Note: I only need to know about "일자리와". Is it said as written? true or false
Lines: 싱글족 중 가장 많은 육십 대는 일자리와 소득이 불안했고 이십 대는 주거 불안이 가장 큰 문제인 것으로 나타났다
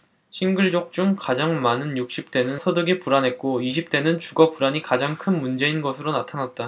false